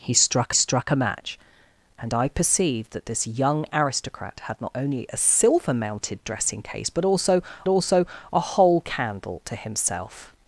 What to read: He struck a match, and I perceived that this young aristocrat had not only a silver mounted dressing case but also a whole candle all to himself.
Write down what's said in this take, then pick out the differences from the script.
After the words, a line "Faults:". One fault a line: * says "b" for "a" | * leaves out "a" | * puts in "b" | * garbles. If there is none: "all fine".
He struck struck a match, and I perceived that this young aristocrat had not only a silver mounted dressing case but also also a whole candle to himself.
Faults:
* puts in "struck"
* puts in "also"
* leaves out "all"